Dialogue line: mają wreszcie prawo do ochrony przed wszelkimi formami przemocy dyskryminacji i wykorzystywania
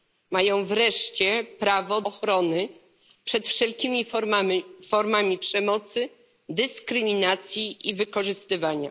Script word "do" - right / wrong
wrong